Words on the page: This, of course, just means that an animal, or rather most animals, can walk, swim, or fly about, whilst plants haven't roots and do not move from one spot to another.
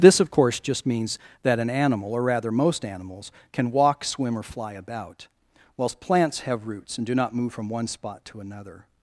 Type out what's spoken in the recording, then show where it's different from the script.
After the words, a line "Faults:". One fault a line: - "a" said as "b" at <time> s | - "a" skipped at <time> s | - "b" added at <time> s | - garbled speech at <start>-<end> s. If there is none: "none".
This, of course, just means that an animal, or rather most animals, can walk, swim, or fly about, whilst plants have roots and do not move from one spot to another.
Faults:
- "haven't" said as "have" at 6.4 s